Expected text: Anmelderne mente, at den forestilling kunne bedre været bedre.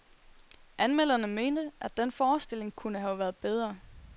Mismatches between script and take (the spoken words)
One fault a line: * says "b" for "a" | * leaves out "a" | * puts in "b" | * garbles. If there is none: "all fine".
* says "have" for "bedre"